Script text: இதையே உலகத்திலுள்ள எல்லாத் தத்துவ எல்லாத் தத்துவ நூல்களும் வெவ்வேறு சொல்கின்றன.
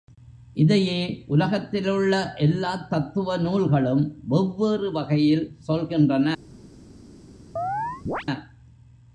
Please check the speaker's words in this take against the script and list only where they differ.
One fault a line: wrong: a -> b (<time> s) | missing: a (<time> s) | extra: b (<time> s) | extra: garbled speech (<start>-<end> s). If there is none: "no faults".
missing: எல்லாத் தத்துவ (3.4 s)
extra: வகையில் (4.9 s)